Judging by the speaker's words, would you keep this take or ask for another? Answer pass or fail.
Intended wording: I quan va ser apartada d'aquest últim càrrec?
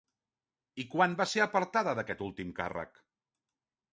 pass